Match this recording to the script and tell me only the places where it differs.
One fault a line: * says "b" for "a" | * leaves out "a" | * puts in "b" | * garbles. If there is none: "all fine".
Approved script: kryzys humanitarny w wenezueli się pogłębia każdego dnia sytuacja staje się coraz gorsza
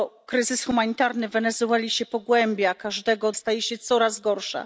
* leaves out "dnia sytuacja"